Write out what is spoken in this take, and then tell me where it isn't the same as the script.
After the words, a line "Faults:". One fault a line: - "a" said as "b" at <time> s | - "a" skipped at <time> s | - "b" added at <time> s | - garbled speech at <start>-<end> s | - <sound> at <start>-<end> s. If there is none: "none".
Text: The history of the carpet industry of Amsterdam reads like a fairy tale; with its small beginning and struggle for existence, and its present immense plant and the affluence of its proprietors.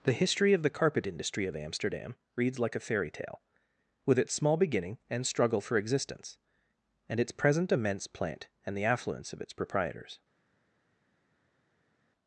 The history of the carpet industry of Amsterdam reads like a fairy tale; with its small beginning and struggle for existence, and its present immense plant and the affluence of its proprietors.
Faults:
none